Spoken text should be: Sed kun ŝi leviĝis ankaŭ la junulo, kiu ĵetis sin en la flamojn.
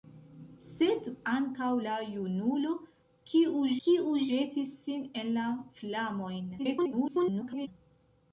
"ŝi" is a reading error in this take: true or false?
true